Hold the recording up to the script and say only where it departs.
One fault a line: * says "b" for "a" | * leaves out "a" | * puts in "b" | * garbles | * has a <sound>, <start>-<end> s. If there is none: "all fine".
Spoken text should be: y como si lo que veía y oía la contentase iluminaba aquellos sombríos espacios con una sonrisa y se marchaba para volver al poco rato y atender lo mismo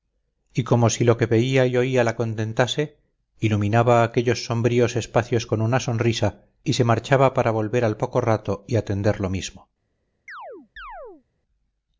* has a chirp, 10.3-11.2 s